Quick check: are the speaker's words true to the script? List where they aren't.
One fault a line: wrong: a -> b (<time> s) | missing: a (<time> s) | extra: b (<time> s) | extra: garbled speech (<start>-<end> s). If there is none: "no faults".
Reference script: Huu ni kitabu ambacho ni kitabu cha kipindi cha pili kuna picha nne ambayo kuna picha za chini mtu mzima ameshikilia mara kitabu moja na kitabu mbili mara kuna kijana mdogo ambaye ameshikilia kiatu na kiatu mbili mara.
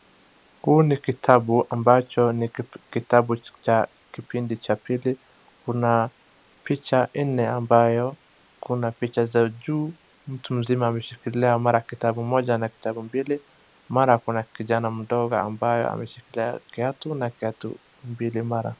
wrong: chini -> juu (9.5 s)